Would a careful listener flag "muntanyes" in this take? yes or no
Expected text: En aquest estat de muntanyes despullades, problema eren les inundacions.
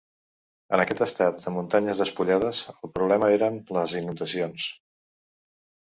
no